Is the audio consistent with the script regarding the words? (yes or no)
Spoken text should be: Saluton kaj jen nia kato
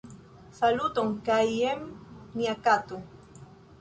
yes